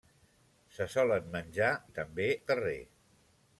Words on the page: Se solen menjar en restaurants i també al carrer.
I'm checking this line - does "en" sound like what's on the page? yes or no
no